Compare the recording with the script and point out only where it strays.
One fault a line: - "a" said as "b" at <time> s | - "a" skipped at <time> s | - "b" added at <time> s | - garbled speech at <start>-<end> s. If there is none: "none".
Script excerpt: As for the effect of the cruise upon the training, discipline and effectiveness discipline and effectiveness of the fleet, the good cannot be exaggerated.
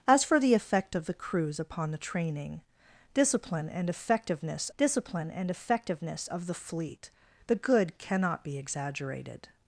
none